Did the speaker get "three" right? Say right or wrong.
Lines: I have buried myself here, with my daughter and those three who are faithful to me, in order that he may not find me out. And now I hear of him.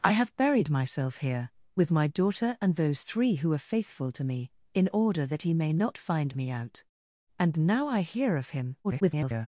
right